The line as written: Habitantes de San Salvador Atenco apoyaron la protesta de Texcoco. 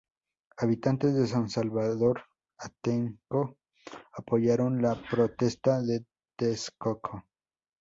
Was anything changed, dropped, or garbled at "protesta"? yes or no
no